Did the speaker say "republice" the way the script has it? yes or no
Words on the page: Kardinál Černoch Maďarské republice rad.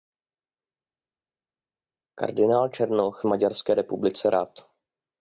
yes